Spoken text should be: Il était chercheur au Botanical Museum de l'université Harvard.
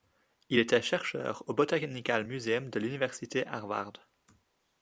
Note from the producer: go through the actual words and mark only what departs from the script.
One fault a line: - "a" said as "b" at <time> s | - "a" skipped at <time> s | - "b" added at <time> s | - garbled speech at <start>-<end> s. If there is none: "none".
none